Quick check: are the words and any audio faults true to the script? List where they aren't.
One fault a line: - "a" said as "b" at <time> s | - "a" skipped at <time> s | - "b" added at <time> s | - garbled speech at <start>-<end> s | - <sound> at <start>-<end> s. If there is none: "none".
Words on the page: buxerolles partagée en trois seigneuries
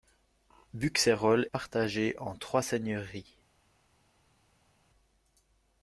none